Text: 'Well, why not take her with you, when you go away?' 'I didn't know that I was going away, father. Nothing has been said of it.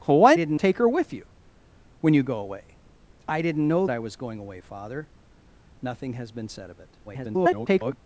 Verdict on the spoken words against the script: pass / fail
fail